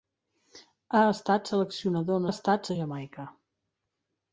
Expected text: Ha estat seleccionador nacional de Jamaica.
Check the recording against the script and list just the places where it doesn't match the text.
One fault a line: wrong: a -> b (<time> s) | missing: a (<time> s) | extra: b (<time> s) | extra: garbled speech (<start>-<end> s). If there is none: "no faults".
wrong: nacional -> estat (2.3 s)